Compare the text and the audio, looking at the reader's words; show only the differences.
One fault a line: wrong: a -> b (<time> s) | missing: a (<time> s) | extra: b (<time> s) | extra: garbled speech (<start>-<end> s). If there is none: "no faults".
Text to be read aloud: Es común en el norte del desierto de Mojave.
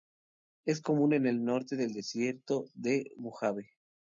no faults